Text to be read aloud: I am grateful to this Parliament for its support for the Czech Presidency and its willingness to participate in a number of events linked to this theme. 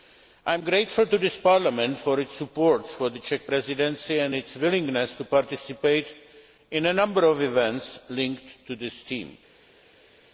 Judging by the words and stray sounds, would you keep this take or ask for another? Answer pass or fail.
pass